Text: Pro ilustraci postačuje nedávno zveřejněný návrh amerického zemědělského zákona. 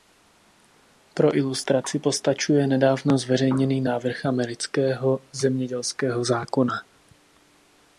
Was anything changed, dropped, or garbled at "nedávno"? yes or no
no